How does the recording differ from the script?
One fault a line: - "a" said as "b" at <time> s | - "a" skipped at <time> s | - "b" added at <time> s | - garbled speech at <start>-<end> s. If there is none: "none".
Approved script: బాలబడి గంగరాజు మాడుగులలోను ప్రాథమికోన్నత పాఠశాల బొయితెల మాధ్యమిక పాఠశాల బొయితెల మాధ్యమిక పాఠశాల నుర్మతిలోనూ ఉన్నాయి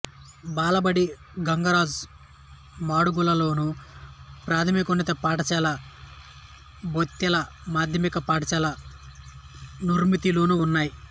- "బొయితెల మాధ్యమిక పాఠశాల" skipped at 8.7 s